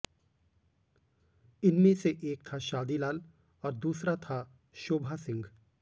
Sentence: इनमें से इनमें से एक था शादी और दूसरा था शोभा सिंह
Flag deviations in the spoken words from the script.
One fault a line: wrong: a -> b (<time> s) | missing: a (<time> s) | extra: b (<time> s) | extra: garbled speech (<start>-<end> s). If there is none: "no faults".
missing: इनमें से (2.2 s)
extra: लाल (3.0 s)